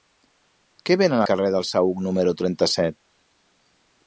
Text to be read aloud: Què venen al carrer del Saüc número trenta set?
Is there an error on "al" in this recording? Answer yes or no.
yes